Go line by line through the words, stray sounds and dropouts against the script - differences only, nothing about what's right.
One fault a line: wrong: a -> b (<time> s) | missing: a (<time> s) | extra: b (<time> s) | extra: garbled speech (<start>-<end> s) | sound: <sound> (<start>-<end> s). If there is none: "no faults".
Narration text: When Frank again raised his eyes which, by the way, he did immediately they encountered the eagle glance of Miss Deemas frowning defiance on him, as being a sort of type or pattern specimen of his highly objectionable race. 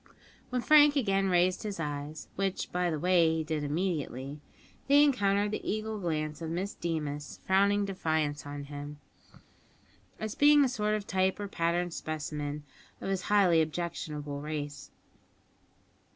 no faults